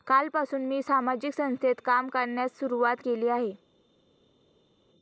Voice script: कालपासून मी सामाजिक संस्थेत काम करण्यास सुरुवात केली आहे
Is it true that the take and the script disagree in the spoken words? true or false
false